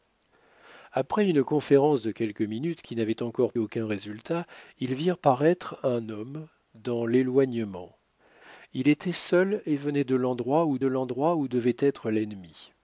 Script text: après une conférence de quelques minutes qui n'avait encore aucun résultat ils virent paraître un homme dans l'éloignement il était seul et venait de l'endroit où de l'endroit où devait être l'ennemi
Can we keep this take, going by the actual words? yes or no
yes